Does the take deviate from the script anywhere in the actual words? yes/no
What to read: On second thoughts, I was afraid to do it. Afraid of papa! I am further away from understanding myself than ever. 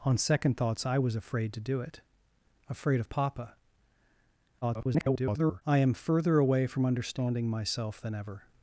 yes